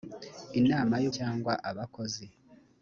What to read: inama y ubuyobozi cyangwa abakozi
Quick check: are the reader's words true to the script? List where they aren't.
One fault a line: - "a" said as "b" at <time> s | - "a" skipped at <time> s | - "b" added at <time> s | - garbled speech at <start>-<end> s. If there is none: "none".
- "ubuyobozi" skipped at 1.1 s